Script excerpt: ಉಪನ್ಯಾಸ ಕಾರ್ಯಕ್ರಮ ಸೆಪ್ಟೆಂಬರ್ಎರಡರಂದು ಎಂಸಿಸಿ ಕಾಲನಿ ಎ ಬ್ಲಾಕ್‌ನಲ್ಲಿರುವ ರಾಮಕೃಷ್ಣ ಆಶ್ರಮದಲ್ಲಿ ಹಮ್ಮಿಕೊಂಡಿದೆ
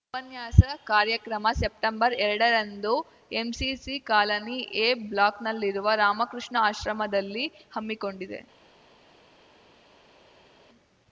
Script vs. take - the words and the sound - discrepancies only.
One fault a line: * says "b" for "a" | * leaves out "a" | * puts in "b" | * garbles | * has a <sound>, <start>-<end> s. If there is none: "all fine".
all fine